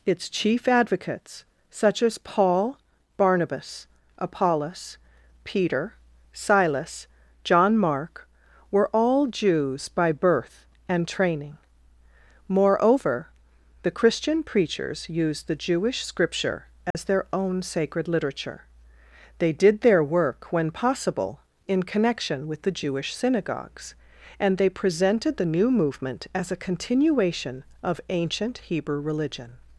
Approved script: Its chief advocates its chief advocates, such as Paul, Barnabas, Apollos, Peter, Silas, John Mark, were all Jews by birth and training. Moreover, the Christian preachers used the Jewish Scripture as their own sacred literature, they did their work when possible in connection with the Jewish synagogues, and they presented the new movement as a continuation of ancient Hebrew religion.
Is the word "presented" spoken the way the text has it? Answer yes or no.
yes